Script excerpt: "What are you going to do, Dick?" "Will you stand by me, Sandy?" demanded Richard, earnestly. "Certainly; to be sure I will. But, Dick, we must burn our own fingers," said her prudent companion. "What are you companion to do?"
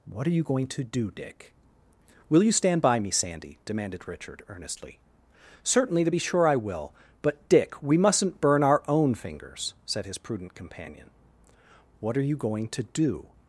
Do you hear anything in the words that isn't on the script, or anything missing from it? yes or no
yes